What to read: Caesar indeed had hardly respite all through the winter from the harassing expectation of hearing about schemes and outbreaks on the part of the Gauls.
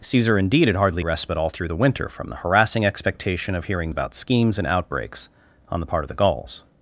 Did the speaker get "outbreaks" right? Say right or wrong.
right